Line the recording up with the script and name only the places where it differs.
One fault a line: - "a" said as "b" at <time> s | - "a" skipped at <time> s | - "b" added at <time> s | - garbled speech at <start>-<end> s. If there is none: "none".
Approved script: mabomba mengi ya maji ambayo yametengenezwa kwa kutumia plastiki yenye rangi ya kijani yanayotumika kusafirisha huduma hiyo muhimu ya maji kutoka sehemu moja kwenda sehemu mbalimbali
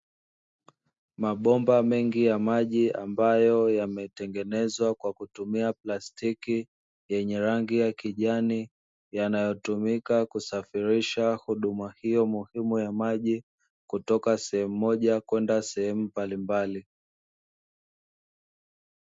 none